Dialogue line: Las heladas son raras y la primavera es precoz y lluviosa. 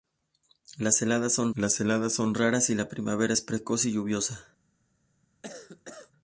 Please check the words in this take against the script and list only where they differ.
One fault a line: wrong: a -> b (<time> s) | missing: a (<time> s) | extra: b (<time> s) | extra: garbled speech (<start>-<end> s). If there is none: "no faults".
extra: las heladas son (1.6 s)